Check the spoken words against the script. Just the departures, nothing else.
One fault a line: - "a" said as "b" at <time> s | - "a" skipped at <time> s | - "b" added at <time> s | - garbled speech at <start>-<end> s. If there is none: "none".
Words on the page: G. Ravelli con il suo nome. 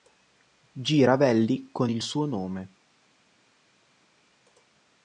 none